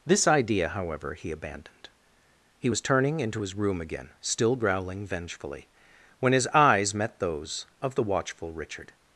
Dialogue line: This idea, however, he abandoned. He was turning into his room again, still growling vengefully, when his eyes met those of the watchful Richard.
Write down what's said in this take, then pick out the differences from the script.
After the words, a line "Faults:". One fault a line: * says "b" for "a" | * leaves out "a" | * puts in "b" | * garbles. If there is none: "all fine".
This idea, however, he abandoned. He was turning into his room again, still growling vengefully, when his eyes met those of the watchful Richard.
Faults:
all fine